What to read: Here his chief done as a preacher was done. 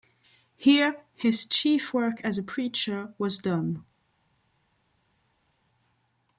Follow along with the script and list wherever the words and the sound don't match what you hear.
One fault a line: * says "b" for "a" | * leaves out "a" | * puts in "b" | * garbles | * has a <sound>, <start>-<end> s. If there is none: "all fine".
* says "work" for "done"